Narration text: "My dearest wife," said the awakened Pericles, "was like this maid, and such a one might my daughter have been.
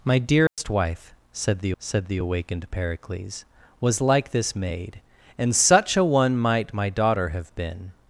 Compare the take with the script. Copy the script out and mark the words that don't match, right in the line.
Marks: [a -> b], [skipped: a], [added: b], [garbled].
"My dearest wife," said the [added: said the] awakened Pericles, "was like this maid, and such a one might my daughter have been.